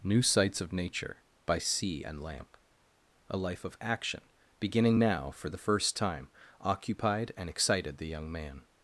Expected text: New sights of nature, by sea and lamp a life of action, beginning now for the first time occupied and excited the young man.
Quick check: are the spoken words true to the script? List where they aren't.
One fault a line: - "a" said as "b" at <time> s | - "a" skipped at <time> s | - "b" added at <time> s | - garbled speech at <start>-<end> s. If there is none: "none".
none